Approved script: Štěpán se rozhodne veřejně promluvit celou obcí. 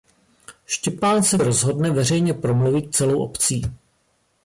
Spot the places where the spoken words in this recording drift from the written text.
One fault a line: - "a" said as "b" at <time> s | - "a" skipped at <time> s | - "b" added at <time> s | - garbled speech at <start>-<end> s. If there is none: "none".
none